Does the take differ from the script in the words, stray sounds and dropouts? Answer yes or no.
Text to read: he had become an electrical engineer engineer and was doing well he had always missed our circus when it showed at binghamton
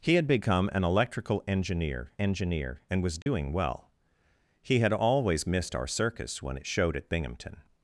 yes